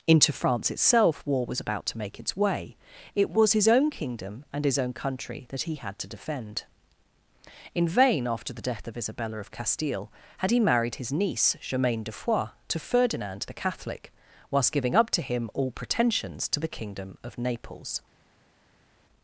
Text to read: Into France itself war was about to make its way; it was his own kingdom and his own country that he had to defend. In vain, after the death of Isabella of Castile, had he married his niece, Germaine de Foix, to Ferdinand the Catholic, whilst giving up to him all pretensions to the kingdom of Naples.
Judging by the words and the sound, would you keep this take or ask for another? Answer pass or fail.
pass